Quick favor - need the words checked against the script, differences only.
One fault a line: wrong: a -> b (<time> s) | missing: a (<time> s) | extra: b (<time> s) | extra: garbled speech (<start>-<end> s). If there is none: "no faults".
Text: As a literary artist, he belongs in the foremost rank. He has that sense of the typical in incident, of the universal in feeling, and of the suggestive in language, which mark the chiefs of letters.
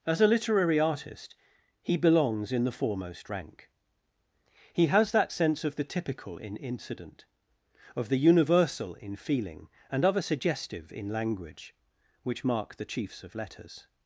wrong: the -> a (10.1 s)